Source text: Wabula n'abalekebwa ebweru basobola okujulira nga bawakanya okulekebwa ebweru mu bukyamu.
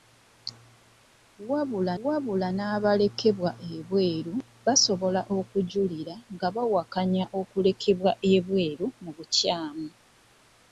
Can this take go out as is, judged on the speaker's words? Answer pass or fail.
fail